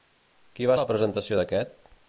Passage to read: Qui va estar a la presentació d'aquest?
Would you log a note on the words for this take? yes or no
yes